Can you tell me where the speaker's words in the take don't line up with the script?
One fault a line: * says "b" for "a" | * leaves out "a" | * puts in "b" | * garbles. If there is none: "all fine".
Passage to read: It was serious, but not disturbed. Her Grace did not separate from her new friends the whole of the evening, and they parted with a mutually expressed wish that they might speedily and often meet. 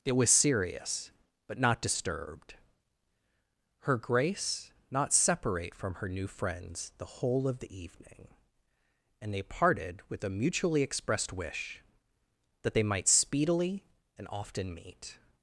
* leaves out "did"